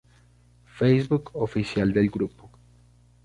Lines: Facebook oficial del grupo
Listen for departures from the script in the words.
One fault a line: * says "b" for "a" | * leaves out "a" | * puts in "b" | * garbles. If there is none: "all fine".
all fine